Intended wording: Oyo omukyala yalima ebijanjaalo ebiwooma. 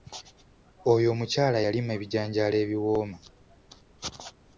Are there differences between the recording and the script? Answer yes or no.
no